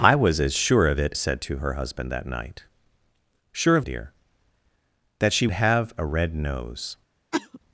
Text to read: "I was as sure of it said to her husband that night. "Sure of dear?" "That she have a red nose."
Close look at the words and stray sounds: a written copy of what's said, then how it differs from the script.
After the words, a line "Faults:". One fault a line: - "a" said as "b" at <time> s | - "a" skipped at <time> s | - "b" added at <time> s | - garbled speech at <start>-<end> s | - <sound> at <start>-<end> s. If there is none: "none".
"I was as sure of it said to her husband that night. "Sure of dear?" "That she have a red nose."
Faults:
- cough at 7.3-7.6 s